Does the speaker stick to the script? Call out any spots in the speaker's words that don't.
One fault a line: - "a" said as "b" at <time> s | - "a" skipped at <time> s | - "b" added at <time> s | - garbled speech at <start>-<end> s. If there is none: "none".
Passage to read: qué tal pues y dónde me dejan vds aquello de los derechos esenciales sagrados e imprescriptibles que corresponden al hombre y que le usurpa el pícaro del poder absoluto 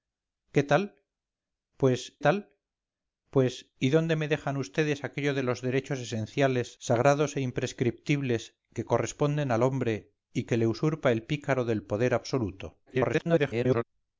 - "tal pues" added at 2.2 s
- garbled speech at 12.9-13.8 s